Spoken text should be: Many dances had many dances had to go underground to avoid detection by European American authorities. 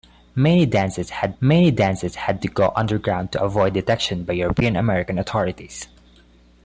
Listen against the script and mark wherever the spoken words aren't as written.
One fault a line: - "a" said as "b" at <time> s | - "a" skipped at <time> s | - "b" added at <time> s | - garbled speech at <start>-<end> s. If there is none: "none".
none